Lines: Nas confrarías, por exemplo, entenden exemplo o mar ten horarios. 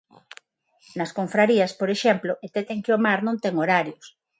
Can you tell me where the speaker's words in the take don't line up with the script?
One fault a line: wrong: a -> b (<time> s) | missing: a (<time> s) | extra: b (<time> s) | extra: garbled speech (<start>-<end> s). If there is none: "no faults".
wrong: exemplo -> que (2.8 s)
extra: non (3.2 s)